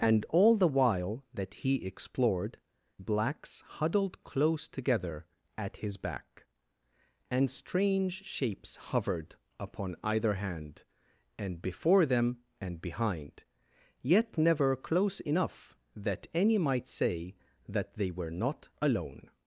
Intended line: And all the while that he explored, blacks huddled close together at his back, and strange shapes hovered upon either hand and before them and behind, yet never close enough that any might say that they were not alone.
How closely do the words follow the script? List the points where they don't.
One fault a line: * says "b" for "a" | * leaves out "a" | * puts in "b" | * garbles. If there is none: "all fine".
all fine